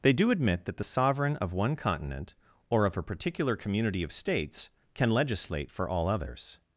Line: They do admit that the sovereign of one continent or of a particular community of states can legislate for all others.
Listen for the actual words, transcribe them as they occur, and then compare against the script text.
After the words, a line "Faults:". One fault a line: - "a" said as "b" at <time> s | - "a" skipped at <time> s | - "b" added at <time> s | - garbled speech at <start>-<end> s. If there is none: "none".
They do admit that the sovereign of one continent or of a particular community of states can legislate for all others.
Faults:
none